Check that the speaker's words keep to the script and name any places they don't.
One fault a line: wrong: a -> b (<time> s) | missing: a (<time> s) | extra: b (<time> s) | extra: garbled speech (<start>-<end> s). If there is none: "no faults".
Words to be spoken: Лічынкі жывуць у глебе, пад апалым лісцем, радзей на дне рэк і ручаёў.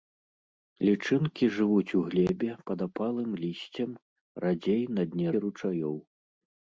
missing: рэк (5.3 s)